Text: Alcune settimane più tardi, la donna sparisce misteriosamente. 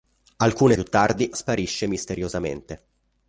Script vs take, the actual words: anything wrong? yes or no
yes